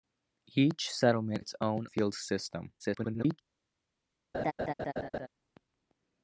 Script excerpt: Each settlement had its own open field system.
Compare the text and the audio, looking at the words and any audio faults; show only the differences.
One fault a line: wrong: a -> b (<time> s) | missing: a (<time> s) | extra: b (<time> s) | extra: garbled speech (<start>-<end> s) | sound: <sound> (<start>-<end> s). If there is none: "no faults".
missing: had (1.4 s)
missing: open (1.9 s)
extra: garbled speech (2.8-3.4 s)
sound: laugh (4.3-5.3 s)